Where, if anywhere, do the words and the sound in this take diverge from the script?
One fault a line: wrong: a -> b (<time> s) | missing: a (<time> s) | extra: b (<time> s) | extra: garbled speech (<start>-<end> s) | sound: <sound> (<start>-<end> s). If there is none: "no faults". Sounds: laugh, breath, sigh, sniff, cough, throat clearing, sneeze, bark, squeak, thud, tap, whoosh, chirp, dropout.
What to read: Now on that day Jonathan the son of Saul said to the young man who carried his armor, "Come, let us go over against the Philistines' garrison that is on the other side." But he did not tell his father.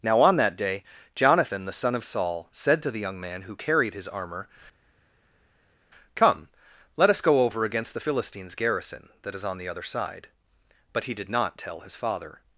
no faults